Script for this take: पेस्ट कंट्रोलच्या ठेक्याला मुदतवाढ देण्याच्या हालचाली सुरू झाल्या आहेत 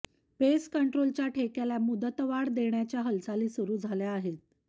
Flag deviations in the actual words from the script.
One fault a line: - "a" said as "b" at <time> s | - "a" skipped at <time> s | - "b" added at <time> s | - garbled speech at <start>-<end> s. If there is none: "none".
none